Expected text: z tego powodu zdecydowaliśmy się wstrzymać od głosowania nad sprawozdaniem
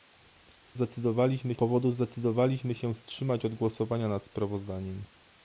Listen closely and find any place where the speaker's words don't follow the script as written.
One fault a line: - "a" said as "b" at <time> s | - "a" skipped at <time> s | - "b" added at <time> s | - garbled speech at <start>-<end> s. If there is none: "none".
- "tego" said as "zdecydowaliśmy" at 0.7 s